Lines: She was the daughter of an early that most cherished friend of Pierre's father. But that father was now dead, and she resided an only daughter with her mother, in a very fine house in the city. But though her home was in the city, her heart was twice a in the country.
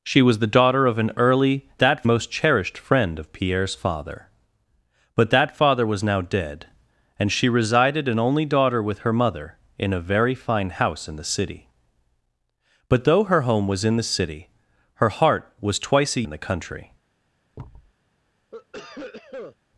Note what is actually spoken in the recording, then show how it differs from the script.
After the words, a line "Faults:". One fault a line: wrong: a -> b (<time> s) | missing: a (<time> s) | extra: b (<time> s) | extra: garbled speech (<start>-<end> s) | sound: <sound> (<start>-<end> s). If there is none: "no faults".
She was the daughter of an early that most cherished friend of Pierre's father. But that father was now dead, and she resided an only daughter with her mother, in a very fine house in the city. But though her home was in the city, her heart was twice a in the country.
Faults:
sound: thud (17.5-17.9 s)
sound: cough (18.5-19.6 s)